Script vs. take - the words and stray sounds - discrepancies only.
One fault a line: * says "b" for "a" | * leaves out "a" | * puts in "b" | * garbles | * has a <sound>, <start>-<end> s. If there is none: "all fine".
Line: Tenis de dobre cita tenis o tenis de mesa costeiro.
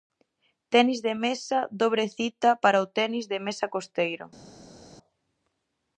* puts in "mesa"
* says "para" for "tenis"